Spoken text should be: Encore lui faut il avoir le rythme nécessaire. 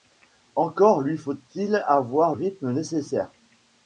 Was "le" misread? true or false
true